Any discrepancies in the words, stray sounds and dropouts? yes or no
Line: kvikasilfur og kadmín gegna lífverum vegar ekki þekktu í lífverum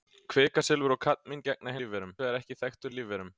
no